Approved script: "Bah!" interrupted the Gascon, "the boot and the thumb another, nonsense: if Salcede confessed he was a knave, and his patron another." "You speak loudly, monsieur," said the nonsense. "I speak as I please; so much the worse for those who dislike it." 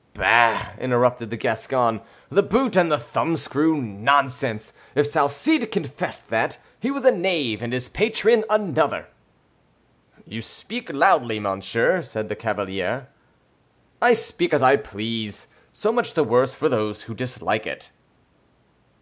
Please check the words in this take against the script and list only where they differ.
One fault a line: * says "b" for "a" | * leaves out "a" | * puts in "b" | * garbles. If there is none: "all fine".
* says "screw" for "another"
* puts in "that"
* says "cavalier" for "nonsense"